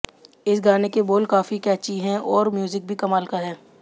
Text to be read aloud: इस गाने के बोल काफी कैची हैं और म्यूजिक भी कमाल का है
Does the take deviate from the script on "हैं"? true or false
false